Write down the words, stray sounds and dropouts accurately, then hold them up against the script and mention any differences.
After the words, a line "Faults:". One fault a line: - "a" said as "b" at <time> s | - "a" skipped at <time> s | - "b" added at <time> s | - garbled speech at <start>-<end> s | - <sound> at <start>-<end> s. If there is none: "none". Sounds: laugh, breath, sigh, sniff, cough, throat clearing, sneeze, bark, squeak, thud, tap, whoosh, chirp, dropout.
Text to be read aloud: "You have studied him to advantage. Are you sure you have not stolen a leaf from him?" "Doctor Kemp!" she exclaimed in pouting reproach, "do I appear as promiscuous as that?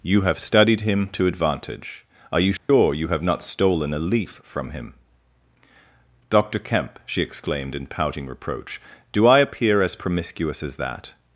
"You have studied him to advantage. Are you sure you have not stolen a leaf from him?" "Doctor Kemp!" she exclaimed in pouting reproach, "do I appear as promiscuous as that?
Faults:
- dropout at 2.6-2.7 s